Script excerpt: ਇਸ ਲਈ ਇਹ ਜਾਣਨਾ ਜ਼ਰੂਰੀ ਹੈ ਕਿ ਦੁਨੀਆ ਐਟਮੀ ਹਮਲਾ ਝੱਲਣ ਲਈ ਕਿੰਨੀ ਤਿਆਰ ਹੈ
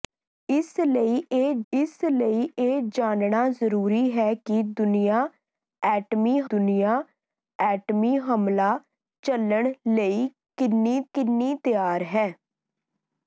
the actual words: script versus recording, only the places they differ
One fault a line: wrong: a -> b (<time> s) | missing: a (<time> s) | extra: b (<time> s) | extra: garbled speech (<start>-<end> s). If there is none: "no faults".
extra: ਇਸ ਲਈ ਇਹ (1.7 s)
extra: ਦੁਨੀਆ ਐਟਮੀ (6.5 s)
extra: ਕਿੰਨੀ (11.1 s)